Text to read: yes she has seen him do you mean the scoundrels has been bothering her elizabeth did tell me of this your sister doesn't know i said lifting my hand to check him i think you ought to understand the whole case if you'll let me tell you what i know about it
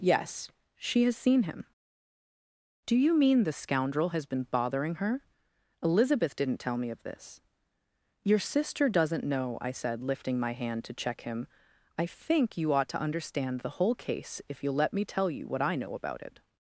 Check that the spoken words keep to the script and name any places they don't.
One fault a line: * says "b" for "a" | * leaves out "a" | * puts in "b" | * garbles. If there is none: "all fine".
* says "scoundrel" for "scoundrels"
* says "didn't" for "did"